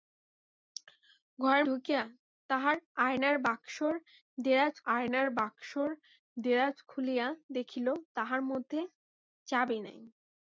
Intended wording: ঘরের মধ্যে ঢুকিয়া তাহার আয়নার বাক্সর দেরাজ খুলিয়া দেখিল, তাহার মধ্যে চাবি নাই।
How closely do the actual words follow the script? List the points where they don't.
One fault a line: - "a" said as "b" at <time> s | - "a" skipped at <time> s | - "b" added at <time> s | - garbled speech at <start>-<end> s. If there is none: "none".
- "মধ্যে" skipped at 1.6 s
- "আয়নার বাক্সর দেরাজ" added at 4.9 s